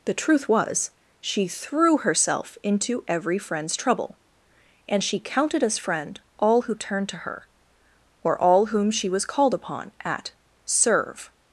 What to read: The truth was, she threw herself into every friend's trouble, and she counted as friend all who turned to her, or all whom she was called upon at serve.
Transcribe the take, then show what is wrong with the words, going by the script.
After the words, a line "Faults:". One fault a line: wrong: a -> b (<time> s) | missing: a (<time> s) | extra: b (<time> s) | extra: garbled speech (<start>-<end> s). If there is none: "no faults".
The truth was, she threw herself into every friend's trouble, and she counted as friend all who turned to her, or all whom she was called upon at serve.
Faults:
no faults